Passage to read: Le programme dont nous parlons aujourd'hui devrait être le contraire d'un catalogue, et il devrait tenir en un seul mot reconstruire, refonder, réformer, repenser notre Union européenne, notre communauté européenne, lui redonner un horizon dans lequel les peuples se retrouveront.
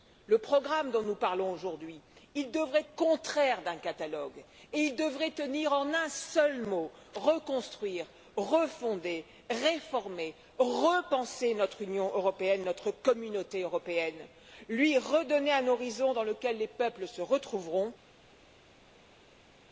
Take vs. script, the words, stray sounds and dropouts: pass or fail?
fail